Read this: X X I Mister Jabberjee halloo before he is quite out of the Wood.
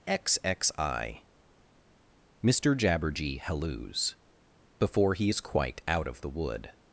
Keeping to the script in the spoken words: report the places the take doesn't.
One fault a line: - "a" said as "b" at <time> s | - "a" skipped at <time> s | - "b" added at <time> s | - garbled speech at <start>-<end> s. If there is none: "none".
- "halloo" said as "halloos" at 3.4 s